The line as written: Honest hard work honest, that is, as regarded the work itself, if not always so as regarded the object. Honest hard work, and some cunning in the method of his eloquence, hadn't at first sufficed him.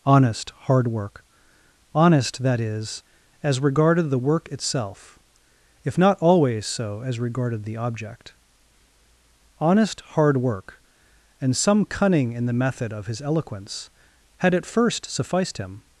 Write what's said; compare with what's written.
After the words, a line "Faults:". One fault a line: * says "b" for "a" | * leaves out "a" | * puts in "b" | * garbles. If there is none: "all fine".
Honest hard work honest, that is, as regarded the work itself, if not always so as regarded the object. Honest hard work, and some cunning in the method of his eloquence, had at first sufficed him.
Faults:
* says "had" for "hadn't"